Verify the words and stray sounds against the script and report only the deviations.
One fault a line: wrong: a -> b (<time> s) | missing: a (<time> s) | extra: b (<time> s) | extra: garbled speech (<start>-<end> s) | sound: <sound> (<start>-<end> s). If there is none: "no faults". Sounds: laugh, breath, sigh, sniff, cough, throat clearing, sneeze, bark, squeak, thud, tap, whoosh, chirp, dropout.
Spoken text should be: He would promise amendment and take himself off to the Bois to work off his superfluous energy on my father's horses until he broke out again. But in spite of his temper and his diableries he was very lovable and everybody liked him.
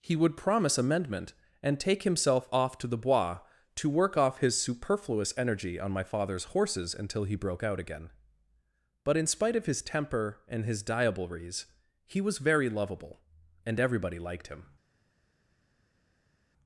no faults